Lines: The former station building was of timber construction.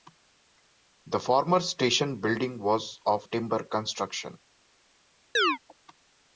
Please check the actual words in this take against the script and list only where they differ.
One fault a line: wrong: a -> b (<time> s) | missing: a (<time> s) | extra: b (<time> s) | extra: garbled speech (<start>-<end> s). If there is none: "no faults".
no faults